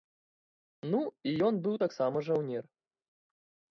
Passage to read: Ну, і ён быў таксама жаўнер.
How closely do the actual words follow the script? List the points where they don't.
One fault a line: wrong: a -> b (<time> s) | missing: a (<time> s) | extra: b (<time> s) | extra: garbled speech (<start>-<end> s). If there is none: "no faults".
no faults